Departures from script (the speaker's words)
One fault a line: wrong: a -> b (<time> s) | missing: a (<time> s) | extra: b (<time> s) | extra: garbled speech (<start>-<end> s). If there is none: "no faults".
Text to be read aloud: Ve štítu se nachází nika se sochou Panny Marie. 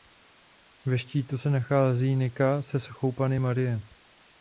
no faults